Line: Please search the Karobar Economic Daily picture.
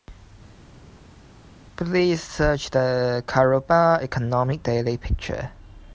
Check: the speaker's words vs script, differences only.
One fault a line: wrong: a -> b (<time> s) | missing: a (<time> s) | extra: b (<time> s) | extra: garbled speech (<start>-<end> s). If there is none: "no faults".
no faults